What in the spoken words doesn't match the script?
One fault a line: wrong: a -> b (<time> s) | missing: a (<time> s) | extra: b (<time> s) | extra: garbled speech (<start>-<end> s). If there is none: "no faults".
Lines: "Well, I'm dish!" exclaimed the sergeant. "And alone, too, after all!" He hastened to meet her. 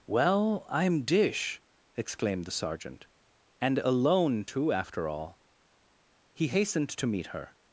no faults